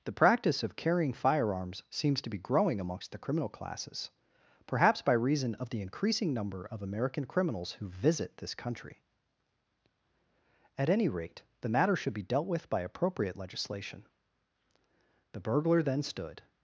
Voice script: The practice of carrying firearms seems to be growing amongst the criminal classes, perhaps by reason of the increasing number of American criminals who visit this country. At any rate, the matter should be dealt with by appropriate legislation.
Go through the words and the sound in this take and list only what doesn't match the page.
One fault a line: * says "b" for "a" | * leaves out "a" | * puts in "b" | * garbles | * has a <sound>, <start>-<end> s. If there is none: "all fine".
* puts in "The burglar then stood"